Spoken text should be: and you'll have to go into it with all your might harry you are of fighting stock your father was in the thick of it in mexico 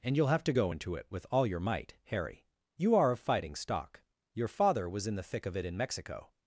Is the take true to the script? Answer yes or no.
yes